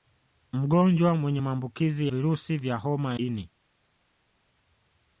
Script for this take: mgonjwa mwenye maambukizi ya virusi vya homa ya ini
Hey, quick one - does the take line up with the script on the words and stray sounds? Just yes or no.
no